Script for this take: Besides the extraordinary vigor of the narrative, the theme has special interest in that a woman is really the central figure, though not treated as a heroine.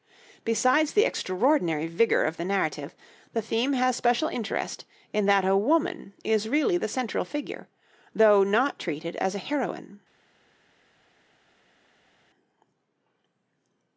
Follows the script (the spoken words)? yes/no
yes